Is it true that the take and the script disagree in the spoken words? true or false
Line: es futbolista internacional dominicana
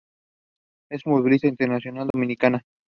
false